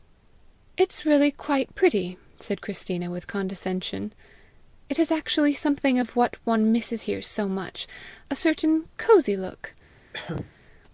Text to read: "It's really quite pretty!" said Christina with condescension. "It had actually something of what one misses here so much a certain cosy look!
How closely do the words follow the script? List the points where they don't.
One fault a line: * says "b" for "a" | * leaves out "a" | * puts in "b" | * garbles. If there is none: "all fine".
* says "has" for "had"